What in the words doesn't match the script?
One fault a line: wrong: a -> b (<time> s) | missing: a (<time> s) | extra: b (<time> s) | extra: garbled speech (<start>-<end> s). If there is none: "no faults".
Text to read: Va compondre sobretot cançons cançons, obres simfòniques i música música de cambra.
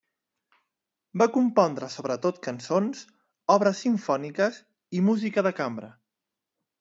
missing: cançons (3.0 s)
missing: música (5.5 s)